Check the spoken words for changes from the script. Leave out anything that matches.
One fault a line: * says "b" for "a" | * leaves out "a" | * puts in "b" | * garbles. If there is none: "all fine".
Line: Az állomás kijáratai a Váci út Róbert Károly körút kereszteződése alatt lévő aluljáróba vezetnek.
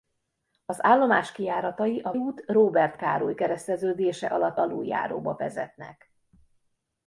* leaves out "Váci"
* leaves out "körút"
* leaves out "lévő"